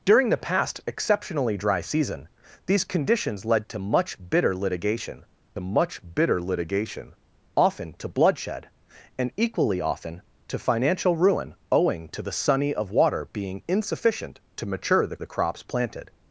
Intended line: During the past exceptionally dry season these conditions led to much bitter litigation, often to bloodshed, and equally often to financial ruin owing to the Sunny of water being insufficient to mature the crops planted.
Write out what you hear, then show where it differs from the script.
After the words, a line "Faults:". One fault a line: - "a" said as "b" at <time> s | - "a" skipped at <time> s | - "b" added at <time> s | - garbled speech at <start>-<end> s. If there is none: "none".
During the past exceptionally dry season these conditions led to much bitter litigation much bitter litigation, often to bloodshed, and equally often to financial ruin owing to the Sunny of water being insufficient to mature the the crops planted.
Faults:
- "much bitter litigation" added at 5.6 s
- "the" added at 15.2 s